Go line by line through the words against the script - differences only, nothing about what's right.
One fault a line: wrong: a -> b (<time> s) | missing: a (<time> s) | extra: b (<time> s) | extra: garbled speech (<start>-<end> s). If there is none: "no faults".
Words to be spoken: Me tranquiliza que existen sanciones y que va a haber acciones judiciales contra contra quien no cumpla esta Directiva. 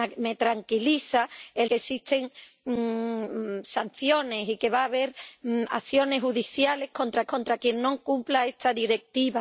no faults